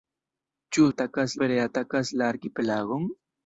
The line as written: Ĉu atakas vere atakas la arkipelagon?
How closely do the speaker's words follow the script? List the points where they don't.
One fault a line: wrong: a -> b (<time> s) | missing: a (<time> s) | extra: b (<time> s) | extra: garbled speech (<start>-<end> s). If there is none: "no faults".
no faults